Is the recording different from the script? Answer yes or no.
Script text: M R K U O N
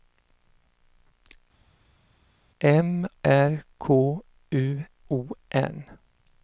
no